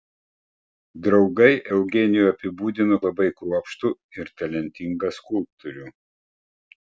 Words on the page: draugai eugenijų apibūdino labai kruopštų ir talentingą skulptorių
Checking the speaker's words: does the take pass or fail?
pass